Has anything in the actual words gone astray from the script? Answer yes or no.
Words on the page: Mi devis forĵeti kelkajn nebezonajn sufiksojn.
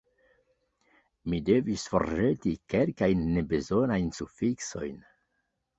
no